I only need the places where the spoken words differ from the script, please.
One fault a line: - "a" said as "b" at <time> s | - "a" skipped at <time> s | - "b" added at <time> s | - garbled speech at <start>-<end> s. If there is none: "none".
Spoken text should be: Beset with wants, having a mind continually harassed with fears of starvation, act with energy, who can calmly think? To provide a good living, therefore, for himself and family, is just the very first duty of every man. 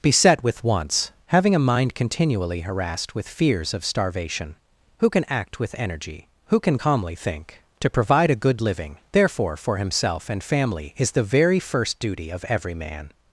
- "who can" added at 5.0 s
- "just" skipped at 11.1 s